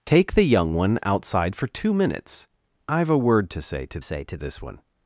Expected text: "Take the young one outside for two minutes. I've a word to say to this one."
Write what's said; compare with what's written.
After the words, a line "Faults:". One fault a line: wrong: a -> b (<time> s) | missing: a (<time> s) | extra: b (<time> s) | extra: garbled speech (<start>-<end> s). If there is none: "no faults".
"Take the young one outside for two minutes. I've a word to say to say to this one."
Faults:
extra: say to (4.0 s)